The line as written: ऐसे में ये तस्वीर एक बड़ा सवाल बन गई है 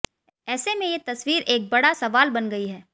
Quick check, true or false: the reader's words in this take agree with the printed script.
true